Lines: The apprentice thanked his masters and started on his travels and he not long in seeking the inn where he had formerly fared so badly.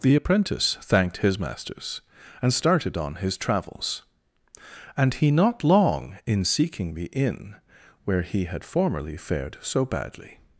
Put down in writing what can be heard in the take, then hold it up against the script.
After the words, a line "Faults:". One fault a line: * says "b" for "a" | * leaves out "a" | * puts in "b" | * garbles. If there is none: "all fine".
The apprentice thanked his masters and started on his travels and he not long in seeking the inn where he had formerly fared so badly.
Faults:
all fine